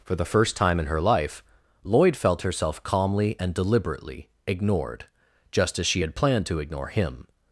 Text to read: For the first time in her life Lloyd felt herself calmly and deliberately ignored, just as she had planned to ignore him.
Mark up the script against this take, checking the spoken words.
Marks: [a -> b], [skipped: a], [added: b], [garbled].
For the first time in her life Lloyd felt herself calmly and deliberately ignored, just as she had planned to ignore him.